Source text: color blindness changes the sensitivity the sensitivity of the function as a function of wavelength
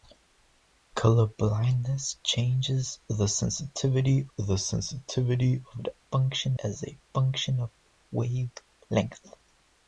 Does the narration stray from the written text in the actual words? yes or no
no